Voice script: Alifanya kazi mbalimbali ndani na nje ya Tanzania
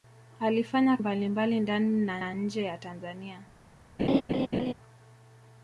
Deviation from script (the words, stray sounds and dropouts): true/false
true